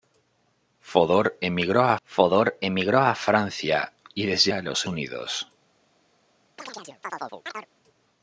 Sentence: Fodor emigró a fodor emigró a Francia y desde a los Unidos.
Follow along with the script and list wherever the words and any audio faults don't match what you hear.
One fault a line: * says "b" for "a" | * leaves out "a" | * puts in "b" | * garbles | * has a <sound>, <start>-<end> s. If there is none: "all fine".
* has a chirp, 6.6-7.7 s